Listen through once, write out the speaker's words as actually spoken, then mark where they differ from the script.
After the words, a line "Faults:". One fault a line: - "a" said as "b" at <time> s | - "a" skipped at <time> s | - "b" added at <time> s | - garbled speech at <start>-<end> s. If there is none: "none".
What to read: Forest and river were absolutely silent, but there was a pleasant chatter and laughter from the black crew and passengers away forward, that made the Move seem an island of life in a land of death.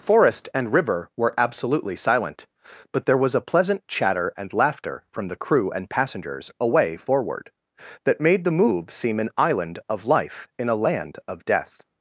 Forest and river were absolutely silent, but there was a pleasant chatter and laughter from the crew and passengers away forward, that made the Move seem an island of life in a land of death.
Faults:
- "black" skipped at 5.3 s